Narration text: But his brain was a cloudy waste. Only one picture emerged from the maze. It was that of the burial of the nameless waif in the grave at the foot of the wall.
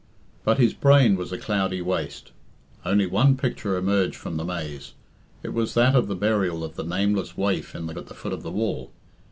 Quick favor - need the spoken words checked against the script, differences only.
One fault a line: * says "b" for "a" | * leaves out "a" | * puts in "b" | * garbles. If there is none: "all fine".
* leaves out "grave"